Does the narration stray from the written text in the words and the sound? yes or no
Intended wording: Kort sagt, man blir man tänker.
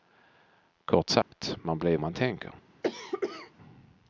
yes